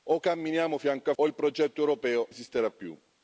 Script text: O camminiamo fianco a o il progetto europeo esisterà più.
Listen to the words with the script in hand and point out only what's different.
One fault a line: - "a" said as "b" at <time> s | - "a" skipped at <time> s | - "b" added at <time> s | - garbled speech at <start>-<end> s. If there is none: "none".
none